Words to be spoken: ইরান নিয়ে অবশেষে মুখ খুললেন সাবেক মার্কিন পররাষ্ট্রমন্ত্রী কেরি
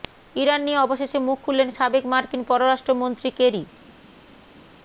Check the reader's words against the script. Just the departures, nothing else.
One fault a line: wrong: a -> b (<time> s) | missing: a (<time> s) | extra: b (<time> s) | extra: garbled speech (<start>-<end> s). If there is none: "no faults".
no faults